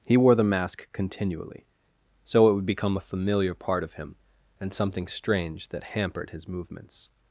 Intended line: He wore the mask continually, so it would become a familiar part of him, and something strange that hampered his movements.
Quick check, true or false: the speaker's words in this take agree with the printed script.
true